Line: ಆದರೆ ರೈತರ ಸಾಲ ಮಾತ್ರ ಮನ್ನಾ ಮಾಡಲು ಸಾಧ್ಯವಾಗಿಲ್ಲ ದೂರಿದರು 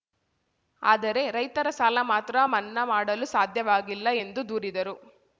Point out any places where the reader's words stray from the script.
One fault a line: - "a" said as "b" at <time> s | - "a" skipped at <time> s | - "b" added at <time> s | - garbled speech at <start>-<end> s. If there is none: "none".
- "ಎಂದು" added at 4.2 s